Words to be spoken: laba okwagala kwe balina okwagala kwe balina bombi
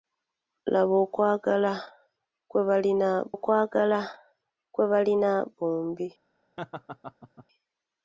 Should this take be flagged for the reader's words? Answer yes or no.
no